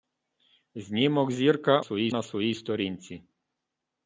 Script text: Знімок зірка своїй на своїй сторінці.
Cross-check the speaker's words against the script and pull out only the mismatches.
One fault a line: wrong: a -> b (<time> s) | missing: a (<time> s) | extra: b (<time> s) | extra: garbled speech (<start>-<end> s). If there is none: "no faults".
no faults